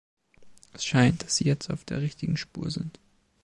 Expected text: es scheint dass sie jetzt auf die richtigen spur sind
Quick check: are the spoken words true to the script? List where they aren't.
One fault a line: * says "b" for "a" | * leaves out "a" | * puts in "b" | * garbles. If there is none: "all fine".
* says "der" for "die"